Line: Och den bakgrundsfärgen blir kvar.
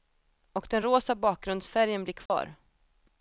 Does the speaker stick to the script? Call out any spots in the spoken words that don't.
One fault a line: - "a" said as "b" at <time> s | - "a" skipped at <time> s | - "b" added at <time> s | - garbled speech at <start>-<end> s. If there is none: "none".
- "rosa" added at 0.8 s